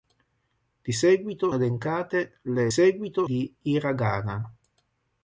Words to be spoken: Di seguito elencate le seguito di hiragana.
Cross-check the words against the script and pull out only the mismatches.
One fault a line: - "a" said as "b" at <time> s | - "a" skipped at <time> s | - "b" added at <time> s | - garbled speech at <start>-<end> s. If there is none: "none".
none